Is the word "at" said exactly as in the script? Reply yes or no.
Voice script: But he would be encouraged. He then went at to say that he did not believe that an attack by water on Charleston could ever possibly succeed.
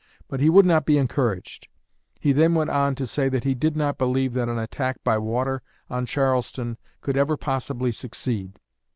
no